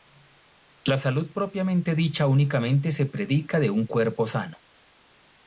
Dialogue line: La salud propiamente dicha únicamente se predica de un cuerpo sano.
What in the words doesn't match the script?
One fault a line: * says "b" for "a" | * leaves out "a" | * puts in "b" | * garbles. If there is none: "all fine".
all fine